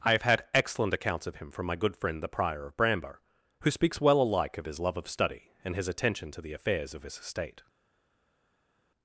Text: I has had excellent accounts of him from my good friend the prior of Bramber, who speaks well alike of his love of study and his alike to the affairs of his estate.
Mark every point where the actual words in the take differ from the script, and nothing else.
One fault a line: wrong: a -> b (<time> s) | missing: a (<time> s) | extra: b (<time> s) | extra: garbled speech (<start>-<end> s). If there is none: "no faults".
wrong: has -> have (0.1 s)
wrong: alike -> attention (5.9 s)